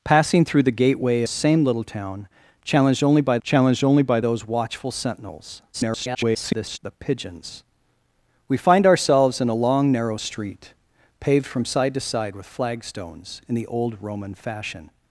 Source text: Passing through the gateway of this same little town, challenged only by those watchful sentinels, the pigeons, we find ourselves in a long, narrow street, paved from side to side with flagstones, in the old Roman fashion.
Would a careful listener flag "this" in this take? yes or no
yes